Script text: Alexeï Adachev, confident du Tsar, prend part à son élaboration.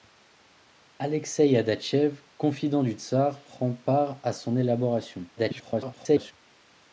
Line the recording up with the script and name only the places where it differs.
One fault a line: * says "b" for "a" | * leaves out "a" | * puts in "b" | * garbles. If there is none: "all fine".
* garbles